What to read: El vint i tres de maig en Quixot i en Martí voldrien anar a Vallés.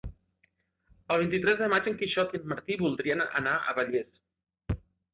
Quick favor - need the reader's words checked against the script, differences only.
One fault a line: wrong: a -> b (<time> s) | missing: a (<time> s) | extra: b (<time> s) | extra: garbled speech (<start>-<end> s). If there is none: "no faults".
no faults